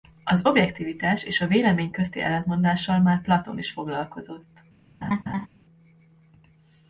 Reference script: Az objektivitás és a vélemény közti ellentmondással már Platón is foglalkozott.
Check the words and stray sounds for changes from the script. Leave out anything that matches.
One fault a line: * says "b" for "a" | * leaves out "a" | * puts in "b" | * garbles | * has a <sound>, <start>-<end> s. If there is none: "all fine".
* has a laugh, 5.0-5.5 s